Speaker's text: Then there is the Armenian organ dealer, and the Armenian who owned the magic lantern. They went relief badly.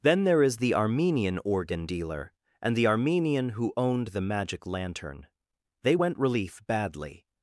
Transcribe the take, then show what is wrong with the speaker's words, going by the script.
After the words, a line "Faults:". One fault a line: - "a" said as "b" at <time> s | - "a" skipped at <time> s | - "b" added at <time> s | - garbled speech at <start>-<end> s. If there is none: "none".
Then there is the Armenian organ dealer, and the Armenian who owned the magic lantern. They went relief badly.
Faults:
none